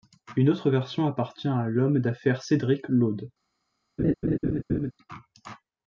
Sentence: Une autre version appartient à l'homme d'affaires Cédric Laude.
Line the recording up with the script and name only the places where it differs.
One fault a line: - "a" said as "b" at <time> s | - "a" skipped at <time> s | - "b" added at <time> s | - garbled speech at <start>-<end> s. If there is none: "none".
none